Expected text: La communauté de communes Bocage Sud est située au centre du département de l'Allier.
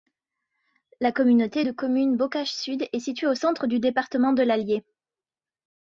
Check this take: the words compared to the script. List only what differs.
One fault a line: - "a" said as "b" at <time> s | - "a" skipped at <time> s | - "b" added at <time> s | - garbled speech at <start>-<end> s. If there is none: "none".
none